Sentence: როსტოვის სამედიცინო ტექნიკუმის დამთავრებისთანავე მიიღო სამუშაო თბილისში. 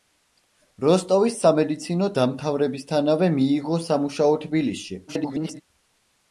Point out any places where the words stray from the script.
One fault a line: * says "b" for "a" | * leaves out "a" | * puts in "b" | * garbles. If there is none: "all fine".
* leaves out "ტექნიკუმის"
* garbles